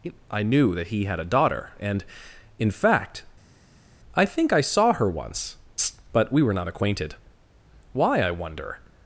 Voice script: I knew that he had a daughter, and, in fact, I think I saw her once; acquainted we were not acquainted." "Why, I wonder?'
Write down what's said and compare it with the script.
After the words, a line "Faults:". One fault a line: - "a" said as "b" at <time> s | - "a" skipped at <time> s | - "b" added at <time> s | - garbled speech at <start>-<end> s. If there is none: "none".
I knew that he had a daughter, and, in fact, I think I saw her once; but we were not acquainted." "Why, I wonder?'
Faults:
- "acquainted" said as "but" at 6.1 s